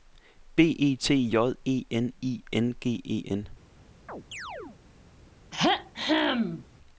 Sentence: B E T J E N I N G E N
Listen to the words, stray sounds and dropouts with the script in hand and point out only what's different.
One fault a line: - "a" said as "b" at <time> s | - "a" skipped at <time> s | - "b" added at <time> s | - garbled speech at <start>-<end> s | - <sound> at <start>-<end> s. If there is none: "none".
- chirp at 4.1-4.8 s
- throat clearing at 5.5-6.7 s